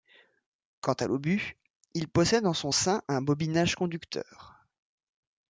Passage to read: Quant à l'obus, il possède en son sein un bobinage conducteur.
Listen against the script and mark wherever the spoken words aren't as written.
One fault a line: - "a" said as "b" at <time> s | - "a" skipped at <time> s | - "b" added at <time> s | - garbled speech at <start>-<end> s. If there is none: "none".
none